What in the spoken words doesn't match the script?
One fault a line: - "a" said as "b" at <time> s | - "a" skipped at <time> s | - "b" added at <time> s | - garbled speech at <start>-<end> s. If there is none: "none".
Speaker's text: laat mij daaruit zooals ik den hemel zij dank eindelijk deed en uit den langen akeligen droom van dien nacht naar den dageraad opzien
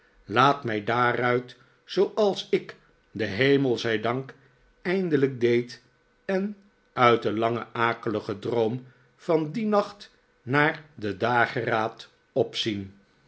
none